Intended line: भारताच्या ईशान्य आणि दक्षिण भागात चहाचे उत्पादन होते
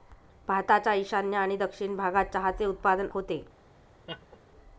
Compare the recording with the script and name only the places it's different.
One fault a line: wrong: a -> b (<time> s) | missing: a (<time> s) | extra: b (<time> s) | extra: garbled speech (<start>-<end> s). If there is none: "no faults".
no faults